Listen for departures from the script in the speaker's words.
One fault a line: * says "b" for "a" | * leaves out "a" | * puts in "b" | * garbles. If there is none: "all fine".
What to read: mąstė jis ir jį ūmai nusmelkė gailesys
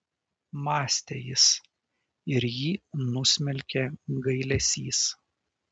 * leaves out "ūmai"